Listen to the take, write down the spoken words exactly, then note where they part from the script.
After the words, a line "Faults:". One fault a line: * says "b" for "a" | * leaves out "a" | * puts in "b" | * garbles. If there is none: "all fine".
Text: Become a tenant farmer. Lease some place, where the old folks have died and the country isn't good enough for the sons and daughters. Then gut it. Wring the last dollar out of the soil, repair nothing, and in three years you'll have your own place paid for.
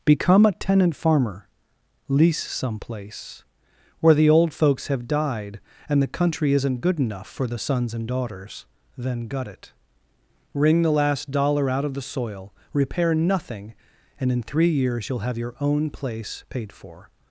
Become a tenant farmer. Lease some place, where the old folks have died and the country isn't good enough for the sons and daughters. Then gut it. Wring the last dollar out of the soil, repair nothing, and in three years you'll have your own place paid for.
Faults:
all fine